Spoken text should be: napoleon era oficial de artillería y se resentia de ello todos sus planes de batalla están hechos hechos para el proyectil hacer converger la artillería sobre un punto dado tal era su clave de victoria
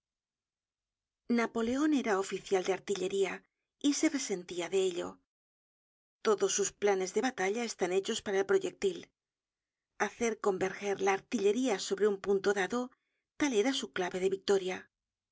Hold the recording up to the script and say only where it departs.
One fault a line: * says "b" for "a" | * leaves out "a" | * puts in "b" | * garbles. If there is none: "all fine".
* leaves out "hechos"